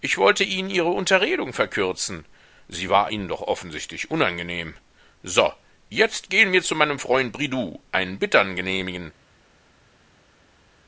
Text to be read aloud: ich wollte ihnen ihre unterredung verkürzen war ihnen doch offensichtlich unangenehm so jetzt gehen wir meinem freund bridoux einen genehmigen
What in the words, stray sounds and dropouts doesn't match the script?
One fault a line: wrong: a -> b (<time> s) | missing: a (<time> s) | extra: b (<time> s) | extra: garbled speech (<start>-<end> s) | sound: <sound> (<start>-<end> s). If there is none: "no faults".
extra: sie (2.7 s)
extra: zu (6.6 s)
extra: bittern (8.2 s)